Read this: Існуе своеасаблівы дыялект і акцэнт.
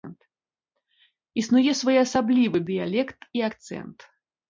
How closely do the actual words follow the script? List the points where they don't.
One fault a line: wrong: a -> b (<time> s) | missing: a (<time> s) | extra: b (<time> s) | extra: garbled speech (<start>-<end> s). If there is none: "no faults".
no faults